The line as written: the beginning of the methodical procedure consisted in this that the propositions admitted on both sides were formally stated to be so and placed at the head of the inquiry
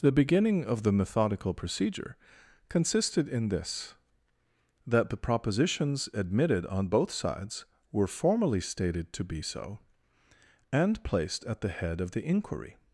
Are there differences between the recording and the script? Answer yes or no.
no